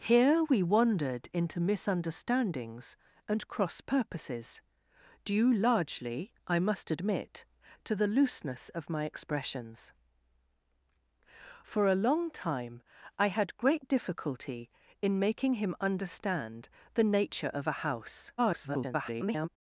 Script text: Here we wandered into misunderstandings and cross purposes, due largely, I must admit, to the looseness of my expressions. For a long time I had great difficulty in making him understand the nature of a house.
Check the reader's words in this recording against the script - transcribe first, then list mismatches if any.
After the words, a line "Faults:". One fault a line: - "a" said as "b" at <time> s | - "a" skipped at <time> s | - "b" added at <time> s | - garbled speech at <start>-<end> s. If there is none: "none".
Here we wandered into misunderstandings and cross purposes, due largely, I must admit, to the looseness of my expressions. For a long time I had great difficulty in making him understand the nature of a house. [garbled]
Faults:
- garbled speech at 18.4-19.5 s